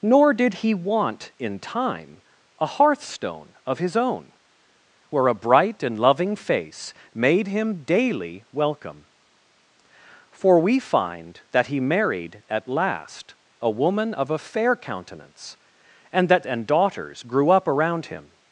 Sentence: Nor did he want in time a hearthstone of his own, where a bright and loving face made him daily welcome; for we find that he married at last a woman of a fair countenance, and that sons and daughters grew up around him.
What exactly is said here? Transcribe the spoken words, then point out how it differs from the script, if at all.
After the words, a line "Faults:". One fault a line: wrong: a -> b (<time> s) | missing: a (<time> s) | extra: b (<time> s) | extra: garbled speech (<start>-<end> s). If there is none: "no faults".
Nor did he want in time a hearthstone of his own, where a bright and loving face made him daily welcome; for we find that he married at last a woman of a fair countenance, and that and daughters grew up around him.
Faults:
missing: sons (16.5 s)